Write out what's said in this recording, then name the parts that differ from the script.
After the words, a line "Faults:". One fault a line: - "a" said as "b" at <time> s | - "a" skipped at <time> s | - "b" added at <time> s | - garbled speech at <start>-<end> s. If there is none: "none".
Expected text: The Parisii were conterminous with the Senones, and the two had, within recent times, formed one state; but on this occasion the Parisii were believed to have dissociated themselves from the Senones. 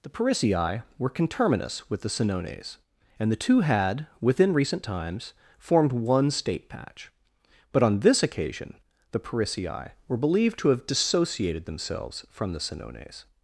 The Parisii were conterminous with the Senones, and the two had, within recent times, formed one state; patch but on this occasion the Parisii were believed to have dissociated themselves from the Senones.
Faults:
- "patch" added at 6.7 s